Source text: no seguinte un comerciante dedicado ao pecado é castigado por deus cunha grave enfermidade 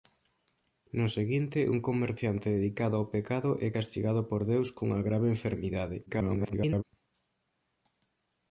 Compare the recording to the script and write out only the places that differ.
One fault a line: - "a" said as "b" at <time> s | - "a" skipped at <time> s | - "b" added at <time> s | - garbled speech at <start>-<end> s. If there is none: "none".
- garbled speech at 6.1-6.8 s